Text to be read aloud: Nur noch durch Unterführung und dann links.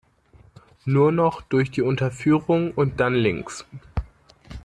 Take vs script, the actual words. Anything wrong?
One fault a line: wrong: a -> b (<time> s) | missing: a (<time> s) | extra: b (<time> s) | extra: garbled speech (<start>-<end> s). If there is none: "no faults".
extra: die (1.7 s)